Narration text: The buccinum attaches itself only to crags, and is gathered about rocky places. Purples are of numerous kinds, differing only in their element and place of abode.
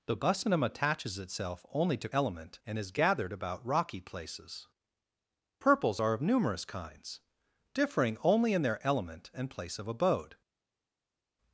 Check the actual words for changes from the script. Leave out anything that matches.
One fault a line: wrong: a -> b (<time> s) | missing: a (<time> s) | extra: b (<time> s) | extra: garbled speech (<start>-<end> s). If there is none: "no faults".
wrong: crags -> element (2.1 s)